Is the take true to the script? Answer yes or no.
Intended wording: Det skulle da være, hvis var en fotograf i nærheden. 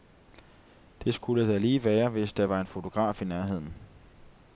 no